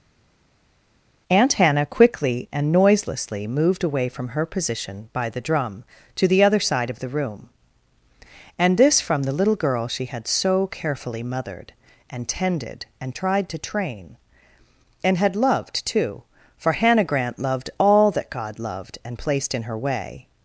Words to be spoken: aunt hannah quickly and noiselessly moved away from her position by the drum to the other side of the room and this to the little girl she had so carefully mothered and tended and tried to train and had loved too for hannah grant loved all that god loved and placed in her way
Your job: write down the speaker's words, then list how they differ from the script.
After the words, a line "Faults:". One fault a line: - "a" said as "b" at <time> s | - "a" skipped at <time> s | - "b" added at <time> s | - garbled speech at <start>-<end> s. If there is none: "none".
aunt hannah quickly and noiselessly moved away from her position by the drum to the other side of the room and this from the little girl she had so carefully mothered and tended and tried to train and had loved too for hannah grant loved all that god loved and placed in her way
Faults:
- "to" said as "from" at 9.0 s